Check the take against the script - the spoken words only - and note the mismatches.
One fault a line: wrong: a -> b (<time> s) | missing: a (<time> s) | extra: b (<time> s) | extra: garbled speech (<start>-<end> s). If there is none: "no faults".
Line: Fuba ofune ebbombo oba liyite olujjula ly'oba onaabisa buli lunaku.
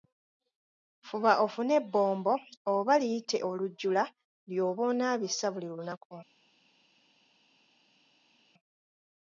no faults